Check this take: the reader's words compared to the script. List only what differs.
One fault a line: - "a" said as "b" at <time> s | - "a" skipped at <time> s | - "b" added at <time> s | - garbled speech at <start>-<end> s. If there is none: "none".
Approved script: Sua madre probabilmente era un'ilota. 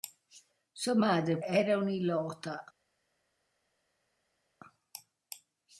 - "probabilmente" skipped at 1.4 s